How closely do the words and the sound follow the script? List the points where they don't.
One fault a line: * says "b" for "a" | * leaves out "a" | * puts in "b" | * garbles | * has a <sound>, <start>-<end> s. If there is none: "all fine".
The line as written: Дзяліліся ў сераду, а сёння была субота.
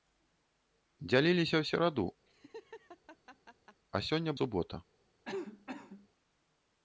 * has a laugh, 2.3-3.8 s
* leaves out "была"
* has a cough, 5.2-6.1 s